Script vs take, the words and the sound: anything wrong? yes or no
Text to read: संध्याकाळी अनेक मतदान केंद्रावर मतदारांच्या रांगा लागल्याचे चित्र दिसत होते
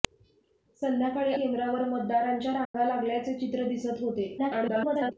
yes